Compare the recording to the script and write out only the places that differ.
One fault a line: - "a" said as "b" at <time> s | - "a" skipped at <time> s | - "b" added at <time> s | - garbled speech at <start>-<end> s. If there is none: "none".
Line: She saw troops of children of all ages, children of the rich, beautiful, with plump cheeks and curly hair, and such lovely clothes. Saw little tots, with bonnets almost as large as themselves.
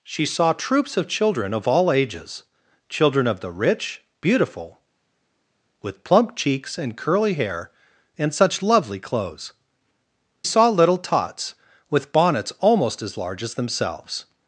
none